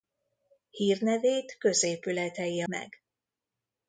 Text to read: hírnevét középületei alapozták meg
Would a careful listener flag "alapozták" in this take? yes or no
yes